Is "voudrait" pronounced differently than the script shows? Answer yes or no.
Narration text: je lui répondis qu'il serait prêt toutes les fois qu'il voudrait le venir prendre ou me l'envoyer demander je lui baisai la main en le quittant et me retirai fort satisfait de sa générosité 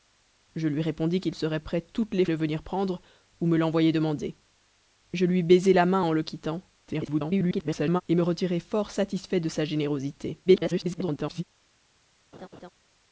yes